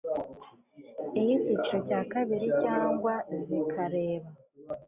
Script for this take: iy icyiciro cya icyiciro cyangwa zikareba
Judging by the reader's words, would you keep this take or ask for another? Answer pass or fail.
fail